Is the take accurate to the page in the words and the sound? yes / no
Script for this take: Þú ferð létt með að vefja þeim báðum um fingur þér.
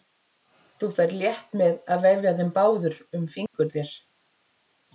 no